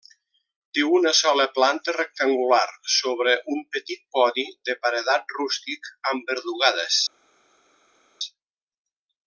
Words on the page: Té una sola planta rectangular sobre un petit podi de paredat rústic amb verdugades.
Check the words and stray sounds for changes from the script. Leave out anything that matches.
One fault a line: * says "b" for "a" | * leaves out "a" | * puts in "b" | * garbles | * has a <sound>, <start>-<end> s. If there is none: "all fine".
all fine